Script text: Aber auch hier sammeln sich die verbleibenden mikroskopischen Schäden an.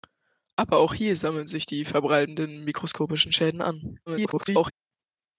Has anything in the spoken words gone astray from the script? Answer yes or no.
yes